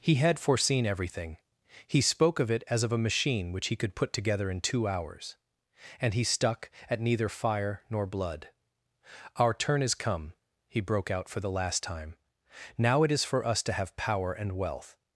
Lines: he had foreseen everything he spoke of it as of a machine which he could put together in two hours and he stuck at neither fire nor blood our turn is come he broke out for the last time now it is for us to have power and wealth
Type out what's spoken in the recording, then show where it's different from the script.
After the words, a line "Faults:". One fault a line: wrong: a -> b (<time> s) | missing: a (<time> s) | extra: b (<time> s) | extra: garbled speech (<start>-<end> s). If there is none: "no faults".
he had foreseen everything he spoke of it as of a machine which he could put together in two hours and he stuck at neither fire nor blood our turn is come he broke out for the last time now it is for us to have power and wealth
Faults:
no faults